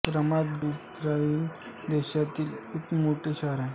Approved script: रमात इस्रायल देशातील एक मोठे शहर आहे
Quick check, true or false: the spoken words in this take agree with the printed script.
true